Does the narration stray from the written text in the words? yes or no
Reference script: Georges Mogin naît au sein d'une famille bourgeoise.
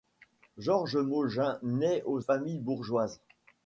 yes